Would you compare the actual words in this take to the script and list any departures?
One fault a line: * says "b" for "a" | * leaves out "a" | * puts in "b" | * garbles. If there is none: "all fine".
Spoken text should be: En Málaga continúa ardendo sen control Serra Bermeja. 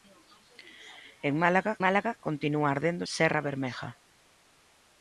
* puts in "Málaga"
* leaves out "sen control"